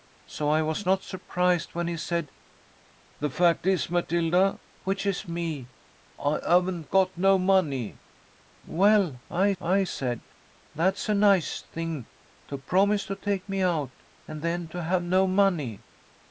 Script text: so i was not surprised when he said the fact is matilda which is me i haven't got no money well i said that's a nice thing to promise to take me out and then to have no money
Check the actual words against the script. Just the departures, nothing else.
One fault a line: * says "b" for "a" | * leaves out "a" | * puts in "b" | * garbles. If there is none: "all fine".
* puts in "i"